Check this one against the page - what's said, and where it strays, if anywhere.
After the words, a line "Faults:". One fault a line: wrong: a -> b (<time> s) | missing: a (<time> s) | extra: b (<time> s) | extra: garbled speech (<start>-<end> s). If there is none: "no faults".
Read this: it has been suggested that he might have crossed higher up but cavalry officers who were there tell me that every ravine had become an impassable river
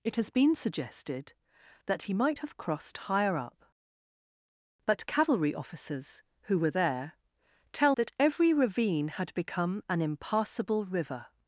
it has been suggested that he might have crossed higher up but cavalry officers who were there tell that every ravine had become an impassable river
Faults:
missing: me (8.0 s)